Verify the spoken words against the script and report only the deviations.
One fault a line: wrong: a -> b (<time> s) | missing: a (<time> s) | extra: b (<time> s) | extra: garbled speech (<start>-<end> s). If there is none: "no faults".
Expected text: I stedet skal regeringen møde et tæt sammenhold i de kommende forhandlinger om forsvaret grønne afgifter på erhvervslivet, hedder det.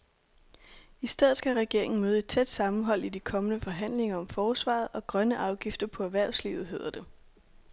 extra: og (4.9 s)